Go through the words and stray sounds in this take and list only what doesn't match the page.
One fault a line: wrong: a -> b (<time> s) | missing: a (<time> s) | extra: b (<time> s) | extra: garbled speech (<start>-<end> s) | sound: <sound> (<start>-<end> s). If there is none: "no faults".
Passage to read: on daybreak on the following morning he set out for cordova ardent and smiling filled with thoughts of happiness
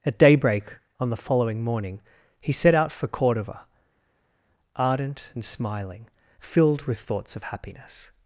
wrong: on -> at (0.0 s)